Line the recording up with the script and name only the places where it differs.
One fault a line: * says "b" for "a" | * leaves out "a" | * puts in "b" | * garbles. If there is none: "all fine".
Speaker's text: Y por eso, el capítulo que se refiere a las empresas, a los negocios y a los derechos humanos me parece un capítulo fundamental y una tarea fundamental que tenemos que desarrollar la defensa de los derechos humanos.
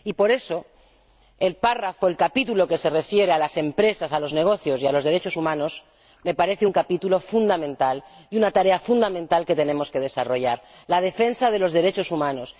all fine